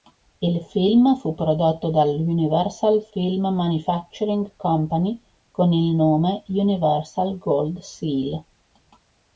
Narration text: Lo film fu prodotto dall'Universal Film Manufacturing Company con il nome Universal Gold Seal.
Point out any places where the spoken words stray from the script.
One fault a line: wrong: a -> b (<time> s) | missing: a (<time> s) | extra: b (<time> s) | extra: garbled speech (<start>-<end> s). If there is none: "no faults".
wrong: Lo -> Il (0.4 s)